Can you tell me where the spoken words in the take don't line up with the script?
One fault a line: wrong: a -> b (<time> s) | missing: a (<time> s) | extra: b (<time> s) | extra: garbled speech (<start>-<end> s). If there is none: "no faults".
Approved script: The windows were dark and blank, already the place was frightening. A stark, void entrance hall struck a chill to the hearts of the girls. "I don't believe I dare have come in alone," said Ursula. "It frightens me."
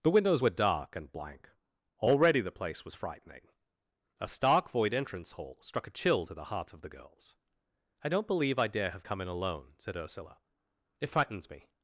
no faults